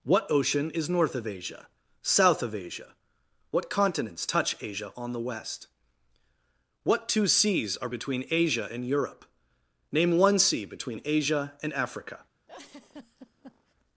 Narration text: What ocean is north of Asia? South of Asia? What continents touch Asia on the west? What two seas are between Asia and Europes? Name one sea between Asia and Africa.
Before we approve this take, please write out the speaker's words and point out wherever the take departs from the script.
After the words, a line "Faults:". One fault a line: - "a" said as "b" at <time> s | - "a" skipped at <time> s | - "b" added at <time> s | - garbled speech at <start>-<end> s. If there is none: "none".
What ocean is north of Asia? South of Asia? What continents touch Asia on the west? What two seas are between Asia and Europe? Name one sea between Asia and Africa.
Faults:
- "Europes" said as "Europe" at 8.9 s